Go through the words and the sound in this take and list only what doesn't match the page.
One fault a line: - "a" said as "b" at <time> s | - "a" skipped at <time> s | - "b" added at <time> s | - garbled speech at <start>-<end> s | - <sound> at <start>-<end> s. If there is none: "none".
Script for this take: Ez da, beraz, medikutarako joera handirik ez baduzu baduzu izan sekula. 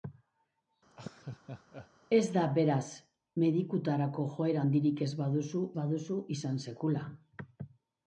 - laugh at 0.9-1.9 s